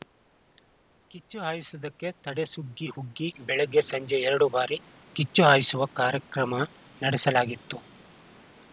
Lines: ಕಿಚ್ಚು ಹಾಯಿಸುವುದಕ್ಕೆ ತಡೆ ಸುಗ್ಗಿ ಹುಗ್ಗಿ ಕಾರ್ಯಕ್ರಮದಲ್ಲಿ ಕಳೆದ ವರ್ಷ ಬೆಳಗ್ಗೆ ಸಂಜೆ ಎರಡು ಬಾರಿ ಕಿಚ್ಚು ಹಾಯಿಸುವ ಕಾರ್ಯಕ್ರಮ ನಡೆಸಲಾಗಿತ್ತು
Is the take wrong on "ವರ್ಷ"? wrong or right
wrong